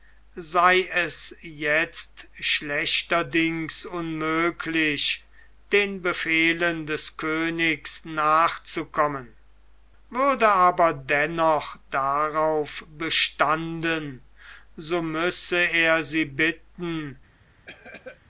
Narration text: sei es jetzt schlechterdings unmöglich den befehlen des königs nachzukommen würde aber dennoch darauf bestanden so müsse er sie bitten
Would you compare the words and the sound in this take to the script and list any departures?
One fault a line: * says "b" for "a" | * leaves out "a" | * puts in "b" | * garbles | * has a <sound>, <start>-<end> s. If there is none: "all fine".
* has a cough, 17.7-18.2 s